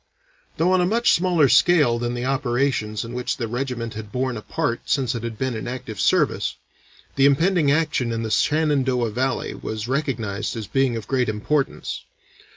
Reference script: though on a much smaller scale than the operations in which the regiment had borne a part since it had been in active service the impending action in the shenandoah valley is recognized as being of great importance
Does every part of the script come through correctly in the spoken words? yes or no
no